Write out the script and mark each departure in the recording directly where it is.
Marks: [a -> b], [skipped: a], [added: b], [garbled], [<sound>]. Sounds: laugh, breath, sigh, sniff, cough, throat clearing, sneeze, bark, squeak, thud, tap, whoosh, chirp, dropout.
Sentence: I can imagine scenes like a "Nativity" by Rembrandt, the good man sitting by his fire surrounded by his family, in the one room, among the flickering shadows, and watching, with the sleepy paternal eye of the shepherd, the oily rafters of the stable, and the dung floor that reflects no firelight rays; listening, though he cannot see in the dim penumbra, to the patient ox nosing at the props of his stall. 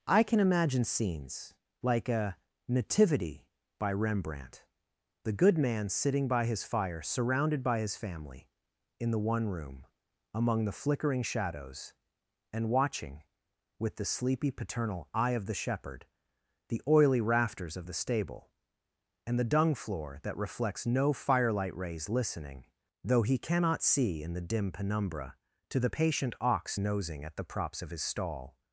I can imagine scenes like a "Nativity" by Rembrandt, the good man sitting by his fire surrounded by his family, in the one room, among the flickering shadows, and watching, with the sleepy paternal eye of the shepherd, the oily rafters of the stable, and the dung floor that reflects no firelight rays; listening, though he cannot see in the dim penumbra, to the patient ox nosing at the props of his stall.